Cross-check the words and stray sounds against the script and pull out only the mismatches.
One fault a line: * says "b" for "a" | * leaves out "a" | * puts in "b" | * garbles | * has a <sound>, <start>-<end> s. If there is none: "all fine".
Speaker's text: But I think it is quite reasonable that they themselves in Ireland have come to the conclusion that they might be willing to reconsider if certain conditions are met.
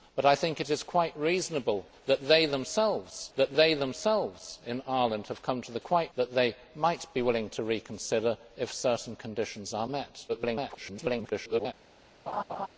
* puts in "that they themselves"
* says "quite" for "conclusion"
* garbles
* has a laugh, 12.3-12.7 s